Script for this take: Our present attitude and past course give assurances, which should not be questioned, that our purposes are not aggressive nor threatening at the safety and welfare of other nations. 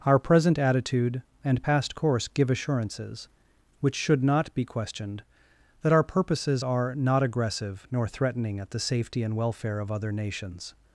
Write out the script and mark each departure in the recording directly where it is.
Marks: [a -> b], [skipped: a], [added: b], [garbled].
Our present attitude and past course give assurances, which should not be questioned, that our purposes are not aggressive nor threatening at the safety and welfare of other nations.